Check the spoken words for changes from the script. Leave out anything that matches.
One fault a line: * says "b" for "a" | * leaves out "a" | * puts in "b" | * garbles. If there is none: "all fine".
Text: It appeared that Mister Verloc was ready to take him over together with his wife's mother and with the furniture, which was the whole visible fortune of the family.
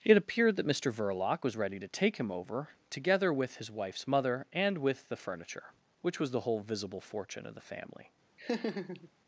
all fine